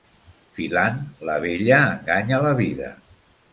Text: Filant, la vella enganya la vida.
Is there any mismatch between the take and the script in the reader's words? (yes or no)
no